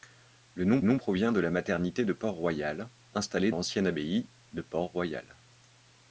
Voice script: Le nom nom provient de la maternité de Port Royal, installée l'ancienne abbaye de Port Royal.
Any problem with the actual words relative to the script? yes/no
no